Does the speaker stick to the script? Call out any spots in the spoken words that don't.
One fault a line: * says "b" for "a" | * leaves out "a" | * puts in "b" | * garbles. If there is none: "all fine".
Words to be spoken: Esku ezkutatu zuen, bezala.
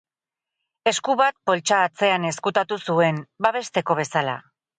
* puts in "bat poltsa atzean"
* puts in "babesteko"